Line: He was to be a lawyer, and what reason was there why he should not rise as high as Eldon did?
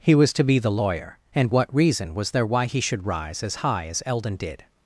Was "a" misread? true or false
true